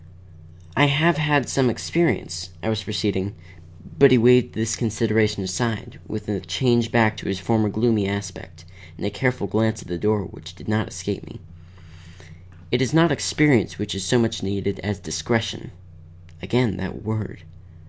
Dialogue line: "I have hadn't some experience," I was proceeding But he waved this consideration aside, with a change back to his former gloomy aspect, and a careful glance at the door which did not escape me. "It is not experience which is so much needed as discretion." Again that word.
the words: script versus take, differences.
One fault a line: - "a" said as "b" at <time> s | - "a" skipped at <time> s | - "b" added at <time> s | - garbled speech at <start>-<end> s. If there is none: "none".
- "hadn't" said as "had" at 1.2 s